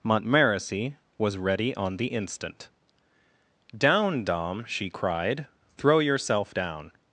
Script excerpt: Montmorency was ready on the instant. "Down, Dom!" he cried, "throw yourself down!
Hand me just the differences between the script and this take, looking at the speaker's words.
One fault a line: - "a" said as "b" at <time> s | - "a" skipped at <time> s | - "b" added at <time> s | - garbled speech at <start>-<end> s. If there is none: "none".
- "he" said as "she" at 4.7 s